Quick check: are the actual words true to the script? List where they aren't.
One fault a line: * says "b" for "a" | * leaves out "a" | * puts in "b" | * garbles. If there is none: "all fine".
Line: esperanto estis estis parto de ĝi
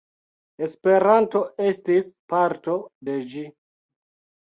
* leaves out "estis"